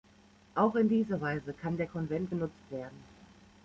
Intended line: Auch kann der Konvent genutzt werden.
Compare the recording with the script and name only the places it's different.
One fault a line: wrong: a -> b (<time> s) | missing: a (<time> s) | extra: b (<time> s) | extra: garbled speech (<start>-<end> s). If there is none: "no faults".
extra: in dieser Weise (0.7 s)